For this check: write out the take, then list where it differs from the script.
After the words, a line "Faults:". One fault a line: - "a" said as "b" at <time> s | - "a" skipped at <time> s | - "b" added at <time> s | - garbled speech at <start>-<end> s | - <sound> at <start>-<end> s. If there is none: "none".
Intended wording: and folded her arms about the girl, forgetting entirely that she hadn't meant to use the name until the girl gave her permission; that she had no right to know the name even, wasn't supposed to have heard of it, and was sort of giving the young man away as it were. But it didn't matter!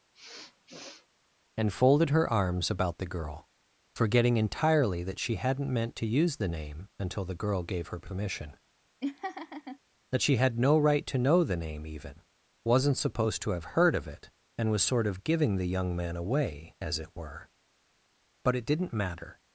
and folded her arms about the girl, forgetting entirely that she hadn't meant to use the name until the girl gave her permission; that she had no right to know the name even, wasn't supposed to have heard of it, and was sort of giving the young man away as it were. But it didn't matter!
Faults:
- sniff at 0.1-1.1 s
- laugh at 9.0-9.8 s